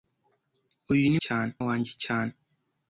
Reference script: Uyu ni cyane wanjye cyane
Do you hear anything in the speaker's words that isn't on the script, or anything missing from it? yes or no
no